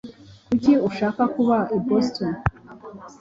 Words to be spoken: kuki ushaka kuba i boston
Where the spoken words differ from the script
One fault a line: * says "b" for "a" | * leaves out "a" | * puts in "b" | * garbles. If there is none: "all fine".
all fine